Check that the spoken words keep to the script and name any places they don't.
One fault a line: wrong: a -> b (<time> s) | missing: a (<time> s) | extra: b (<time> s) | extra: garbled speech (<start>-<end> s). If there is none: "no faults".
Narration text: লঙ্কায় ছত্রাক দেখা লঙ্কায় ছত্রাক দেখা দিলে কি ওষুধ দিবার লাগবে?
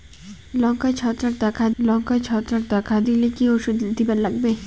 no faults